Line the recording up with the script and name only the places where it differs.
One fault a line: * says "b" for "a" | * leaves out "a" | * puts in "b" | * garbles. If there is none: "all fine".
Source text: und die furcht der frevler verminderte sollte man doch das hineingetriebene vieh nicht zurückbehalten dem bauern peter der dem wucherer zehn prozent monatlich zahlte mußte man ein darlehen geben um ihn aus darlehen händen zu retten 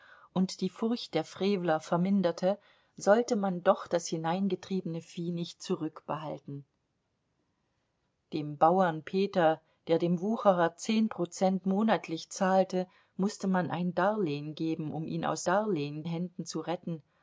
all fine